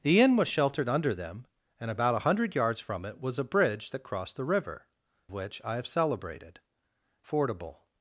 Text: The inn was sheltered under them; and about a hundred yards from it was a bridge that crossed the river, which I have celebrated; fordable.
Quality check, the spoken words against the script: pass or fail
pass